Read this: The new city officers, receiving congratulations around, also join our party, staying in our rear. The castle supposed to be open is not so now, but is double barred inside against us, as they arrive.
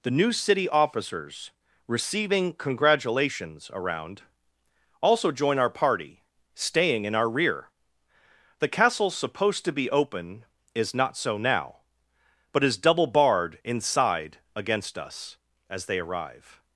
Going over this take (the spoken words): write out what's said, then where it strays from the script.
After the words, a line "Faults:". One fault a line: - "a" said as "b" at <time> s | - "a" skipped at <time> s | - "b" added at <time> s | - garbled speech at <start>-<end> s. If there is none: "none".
The new city officers, receiving congratulations around, also join our party, staying in our rear. The castle supposed to be open is not so now, but is double barred inside against us, as they arrive.
Faults:
none